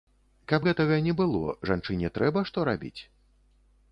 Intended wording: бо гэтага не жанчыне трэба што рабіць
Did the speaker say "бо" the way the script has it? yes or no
no